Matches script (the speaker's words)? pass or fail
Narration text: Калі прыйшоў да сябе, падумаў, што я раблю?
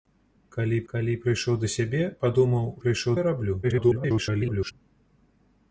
fail